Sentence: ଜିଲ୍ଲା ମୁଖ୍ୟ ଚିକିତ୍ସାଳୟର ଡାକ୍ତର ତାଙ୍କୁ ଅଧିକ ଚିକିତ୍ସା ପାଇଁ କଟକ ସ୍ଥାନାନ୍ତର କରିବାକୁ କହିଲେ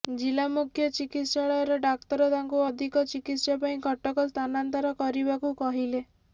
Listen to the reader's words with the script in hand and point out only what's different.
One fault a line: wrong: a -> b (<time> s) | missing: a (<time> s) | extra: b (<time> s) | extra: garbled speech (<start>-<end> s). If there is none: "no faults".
no faults